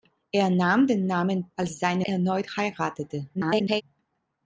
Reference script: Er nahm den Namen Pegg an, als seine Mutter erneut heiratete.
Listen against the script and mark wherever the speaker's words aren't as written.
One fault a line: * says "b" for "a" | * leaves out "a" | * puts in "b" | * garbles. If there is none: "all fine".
* leaves out "Pegg an"
* leaves out "Mutter"
* garbles